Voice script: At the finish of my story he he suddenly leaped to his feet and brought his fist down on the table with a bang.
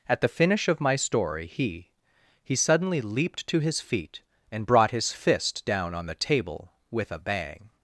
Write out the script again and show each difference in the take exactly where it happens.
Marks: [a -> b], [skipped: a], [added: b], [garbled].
At the finish of my story he he suddenly leaped to his feet and brought his fist down on the table with a bang.